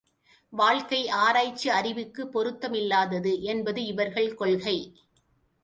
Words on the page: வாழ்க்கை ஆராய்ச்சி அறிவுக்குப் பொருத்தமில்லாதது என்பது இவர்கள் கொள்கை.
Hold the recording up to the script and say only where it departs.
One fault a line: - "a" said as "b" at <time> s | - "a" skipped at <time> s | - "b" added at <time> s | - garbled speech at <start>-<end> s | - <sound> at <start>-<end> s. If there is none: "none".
none